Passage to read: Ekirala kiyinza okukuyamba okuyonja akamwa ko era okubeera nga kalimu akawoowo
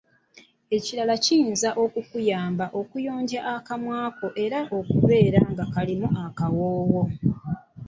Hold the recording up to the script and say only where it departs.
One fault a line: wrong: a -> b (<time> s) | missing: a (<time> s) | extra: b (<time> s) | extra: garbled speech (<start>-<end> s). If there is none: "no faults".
no faults